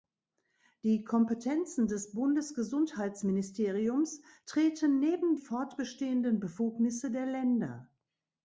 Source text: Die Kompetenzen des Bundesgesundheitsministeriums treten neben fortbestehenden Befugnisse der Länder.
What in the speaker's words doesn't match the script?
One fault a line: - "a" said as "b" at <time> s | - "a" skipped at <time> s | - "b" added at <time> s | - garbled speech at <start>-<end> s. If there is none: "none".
none